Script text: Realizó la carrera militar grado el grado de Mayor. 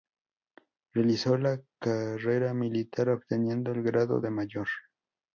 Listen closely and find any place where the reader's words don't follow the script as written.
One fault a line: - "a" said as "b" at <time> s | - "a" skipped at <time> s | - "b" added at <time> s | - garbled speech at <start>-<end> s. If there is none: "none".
- "grado" said as "obteniendo" at 3.1 s